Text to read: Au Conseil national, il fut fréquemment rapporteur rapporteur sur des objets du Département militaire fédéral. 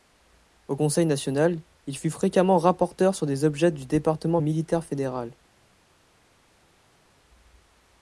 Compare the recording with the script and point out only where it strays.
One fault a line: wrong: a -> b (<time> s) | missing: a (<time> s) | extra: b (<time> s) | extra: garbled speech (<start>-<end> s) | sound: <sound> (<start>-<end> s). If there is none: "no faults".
missing: rapporteur (3.1 s)